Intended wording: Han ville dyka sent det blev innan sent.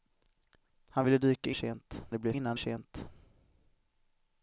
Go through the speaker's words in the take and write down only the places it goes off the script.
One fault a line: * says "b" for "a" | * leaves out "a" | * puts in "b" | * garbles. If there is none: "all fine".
all fine